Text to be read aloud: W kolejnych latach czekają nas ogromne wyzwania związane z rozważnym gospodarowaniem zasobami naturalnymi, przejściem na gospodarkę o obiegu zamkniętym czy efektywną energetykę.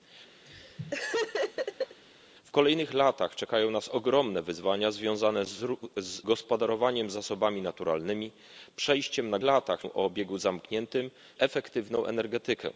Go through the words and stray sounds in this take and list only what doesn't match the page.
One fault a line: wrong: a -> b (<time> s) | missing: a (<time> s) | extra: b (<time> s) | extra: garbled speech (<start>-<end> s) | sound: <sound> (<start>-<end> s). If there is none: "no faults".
sound: laugh (0.4-2.0 s)
missing: z rozważnym (5.4 s)
wrong: gospodarkę -> latach (9.4 s)
missing: czy (11.1 s)